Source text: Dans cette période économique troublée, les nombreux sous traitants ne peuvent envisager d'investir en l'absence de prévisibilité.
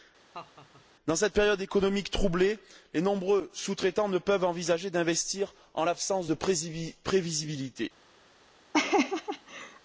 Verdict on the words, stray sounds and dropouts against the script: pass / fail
fail